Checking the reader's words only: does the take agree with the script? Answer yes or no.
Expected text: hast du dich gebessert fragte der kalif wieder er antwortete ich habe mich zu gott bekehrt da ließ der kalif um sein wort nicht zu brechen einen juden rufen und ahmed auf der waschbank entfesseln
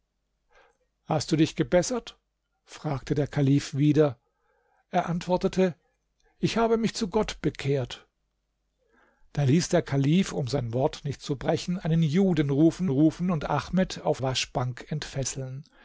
no